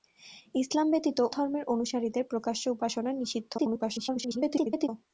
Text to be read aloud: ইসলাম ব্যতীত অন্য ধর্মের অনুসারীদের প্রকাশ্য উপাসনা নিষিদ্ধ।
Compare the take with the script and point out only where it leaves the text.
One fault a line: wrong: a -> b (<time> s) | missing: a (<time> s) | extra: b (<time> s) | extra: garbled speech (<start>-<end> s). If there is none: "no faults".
missing: অন্য (1.2 s)
extra: garbled speech (3.6-4.9 s)